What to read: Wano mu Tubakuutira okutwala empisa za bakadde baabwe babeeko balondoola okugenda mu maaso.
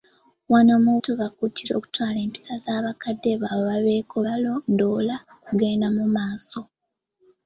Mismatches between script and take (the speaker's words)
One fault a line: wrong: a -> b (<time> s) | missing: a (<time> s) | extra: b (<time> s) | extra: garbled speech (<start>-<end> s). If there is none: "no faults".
no faults